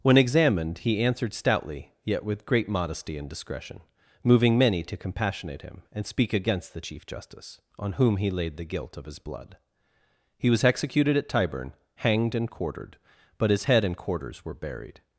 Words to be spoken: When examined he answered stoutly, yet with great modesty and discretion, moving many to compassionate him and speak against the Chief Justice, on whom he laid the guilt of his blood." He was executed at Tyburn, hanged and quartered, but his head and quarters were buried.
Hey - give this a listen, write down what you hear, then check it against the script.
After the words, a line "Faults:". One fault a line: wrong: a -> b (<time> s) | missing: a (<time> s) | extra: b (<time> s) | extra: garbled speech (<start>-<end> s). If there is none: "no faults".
When examined he answered stoutly, yet with great modesty and discretion, moving many to compassionate him and speak against the Chief Justice, on whom he laid the guilt of his blood." He was executed at Tyburn, hanged and quartered, but his head and quarters were buried.
Faults:
no faults